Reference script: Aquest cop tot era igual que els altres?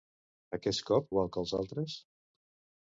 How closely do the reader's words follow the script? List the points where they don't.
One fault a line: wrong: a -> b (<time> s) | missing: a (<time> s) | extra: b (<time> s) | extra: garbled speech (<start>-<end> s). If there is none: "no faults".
missing: tot era (1.1 s)